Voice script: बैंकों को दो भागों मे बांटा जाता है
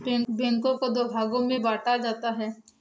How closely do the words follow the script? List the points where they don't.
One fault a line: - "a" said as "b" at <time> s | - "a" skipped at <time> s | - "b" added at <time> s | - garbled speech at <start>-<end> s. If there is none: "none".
none